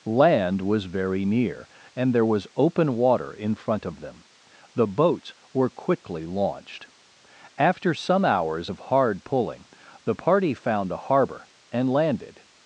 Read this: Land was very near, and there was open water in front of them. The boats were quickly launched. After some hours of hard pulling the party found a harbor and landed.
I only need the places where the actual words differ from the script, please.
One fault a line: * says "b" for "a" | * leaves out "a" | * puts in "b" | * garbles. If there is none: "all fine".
all fine